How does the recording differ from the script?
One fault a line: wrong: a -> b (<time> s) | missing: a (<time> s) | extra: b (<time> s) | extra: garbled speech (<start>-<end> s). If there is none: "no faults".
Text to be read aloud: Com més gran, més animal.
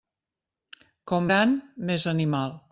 missing: més (1.3 s)